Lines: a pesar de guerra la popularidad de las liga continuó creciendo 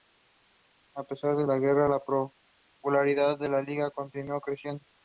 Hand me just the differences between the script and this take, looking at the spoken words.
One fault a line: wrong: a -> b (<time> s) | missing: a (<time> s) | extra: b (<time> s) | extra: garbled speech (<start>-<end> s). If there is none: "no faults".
extra: la (1.5 s)
wrong: las -> la (3.5 s)